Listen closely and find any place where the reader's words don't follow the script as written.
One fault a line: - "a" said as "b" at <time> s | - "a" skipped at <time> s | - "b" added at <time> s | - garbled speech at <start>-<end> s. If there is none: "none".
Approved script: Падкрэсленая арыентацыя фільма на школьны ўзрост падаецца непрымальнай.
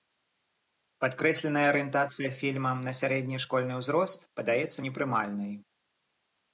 - "сярэдні" added at 3.0 s